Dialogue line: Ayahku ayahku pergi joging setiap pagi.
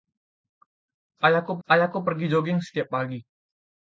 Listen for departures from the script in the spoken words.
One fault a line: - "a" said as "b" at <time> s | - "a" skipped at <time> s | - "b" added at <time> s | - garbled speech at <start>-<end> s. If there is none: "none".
none